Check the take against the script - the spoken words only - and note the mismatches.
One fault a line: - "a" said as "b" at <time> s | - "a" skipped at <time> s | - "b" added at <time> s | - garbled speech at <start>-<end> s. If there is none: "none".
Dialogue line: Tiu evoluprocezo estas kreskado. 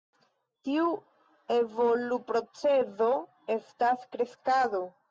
none